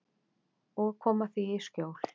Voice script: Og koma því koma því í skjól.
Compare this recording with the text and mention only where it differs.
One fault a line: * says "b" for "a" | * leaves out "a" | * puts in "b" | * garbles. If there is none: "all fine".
* leaves out "koma því"